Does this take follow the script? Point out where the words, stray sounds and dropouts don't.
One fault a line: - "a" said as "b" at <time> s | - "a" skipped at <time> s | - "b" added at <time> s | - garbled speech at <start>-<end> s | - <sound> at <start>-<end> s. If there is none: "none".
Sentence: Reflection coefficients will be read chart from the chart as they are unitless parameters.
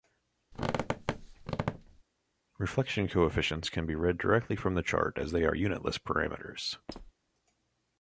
- squeak at 0.5-2.0 s
- "will" said as "can" at 3.7 s
- "chart" said as "directly" at 4.2 s
- squeak at 6.9-7.1 s